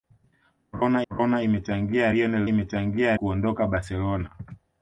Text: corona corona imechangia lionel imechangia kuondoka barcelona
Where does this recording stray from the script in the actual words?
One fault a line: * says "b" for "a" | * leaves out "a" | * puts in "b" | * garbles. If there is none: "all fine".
all fine